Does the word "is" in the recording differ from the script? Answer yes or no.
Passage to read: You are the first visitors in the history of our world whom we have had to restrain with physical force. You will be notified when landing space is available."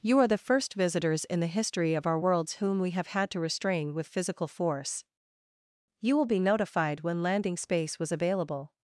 yes